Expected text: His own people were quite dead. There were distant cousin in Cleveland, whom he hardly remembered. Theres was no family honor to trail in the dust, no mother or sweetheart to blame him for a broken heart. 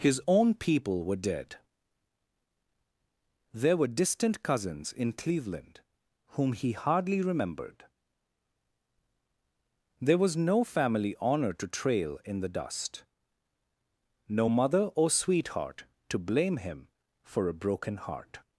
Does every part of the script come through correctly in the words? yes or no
no